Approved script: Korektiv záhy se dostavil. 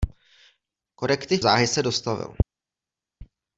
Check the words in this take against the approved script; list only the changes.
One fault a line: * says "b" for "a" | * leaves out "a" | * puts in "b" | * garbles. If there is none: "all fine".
all fine